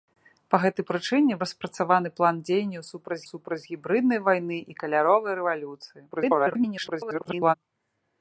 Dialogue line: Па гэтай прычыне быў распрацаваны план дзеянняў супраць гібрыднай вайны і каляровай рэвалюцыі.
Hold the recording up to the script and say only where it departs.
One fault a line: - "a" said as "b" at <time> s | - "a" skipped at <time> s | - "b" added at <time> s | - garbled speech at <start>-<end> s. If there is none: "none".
- "быў" skipped at 1.4 s
- "супраць" added at 3.3 s
- garbled speech at 6.1-7.6 s